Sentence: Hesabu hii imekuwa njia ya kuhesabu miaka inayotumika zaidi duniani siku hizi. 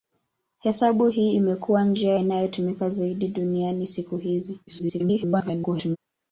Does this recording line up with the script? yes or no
no